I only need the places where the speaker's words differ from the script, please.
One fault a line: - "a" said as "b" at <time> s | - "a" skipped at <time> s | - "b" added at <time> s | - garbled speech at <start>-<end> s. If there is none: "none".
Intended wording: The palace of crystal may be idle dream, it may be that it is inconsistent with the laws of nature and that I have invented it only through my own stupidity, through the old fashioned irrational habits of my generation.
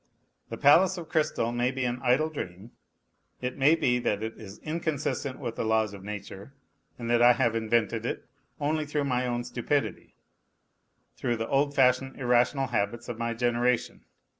- "an" added at 1.8 s